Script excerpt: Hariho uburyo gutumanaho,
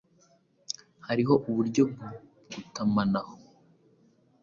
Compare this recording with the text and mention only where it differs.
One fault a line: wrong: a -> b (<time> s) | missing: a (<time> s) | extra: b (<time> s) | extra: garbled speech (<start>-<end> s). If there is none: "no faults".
no faults